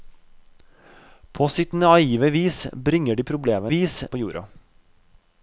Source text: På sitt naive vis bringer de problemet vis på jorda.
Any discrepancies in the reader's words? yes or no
no